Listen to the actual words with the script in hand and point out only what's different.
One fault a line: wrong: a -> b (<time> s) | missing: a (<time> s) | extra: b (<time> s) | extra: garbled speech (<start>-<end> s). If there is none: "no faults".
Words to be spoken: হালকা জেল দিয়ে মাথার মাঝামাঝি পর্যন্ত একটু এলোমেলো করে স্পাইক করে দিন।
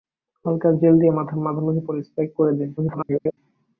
missing: পর্যন্ত একটু এলোমেলো (1.8 s)
extra: garbled speech (2.8-3.4 s)